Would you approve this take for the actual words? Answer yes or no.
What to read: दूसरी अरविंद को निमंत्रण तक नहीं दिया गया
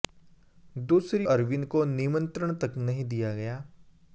yes